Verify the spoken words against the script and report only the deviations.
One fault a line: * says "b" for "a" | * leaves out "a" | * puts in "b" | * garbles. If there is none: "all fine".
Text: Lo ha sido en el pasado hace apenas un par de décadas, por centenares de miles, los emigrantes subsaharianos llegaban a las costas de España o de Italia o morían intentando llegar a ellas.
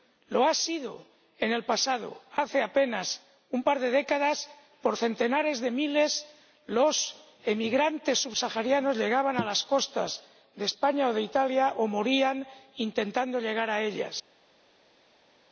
all fine